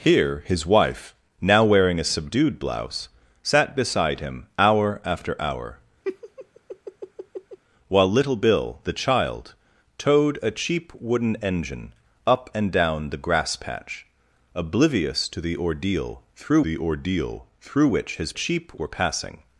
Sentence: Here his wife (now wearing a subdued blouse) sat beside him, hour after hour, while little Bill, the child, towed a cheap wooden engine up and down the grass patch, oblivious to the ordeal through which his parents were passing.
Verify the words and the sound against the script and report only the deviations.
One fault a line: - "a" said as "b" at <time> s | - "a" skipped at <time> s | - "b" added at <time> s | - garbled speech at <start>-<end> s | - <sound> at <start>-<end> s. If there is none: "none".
- laugh at 6.0-7.6 s
- "the ordeal through" added at 16.6 s
- "parents" said as "cheap" at 18.3 s